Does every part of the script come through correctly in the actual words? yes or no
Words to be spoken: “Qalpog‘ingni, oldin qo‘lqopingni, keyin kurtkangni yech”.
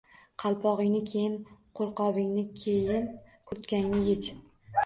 no